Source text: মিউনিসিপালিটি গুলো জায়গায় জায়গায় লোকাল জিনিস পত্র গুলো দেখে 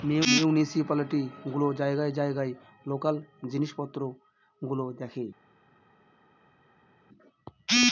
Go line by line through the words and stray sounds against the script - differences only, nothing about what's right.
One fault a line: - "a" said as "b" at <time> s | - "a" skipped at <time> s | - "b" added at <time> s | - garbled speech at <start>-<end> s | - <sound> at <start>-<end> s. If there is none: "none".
none